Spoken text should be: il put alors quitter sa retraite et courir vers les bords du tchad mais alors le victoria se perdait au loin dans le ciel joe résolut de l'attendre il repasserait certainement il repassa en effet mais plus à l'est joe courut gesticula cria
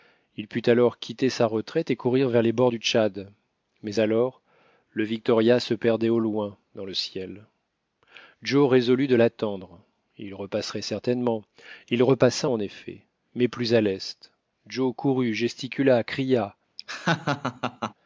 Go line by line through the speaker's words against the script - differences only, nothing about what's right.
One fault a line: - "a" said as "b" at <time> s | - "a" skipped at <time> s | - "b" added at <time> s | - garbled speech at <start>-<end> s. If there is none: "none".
none